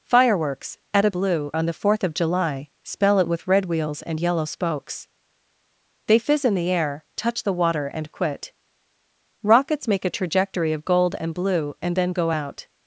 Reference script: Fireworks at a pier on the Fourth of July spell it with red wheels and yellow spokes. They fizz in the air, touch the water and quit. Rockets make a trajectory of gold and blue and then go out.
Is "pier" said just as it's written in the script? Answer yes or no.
no